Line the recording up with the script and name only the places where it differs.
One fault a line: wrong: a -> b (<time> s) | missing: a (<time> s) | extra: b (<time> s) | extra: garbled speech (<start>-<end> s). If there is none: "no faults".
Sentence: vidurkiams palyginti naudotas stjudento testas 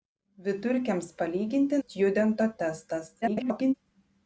missing: naudotas (1.8 s)
extra: garbled speech (3.2-3.7 s)